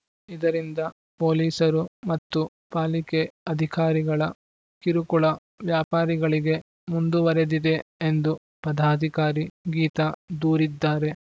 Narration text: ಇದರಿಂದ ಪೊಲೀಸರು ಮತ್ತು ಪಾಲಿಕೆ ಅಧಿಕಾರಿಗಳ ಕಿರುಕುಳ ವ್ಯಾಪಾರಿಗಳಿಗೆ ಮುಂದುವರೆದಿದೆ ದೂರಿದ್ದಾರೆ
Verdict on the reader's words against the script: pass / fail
fail